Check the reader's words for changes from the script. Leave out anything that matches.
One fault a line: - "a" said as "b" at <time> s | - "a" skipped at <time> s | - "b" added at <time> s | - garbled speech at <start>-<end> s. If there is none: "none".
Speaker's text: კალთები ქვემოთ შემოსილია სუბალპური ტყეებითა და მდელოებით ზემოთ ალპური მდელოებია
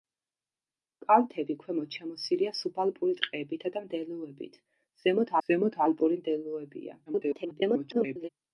- "ზემოთ" added at 5.5 s
- garbled speech at 7.1-8.3 s